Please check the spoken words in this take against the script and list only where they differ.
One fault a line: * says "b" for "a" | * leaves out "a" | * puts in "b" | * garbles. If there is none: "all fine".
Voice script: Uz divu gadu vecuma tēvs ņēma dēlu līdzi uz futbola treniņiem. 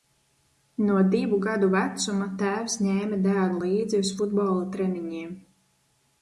* says "No" for "Uz"